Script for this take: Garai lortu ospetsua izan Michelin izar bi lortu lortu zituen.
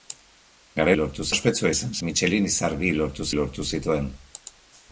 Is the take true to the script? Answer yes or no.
yes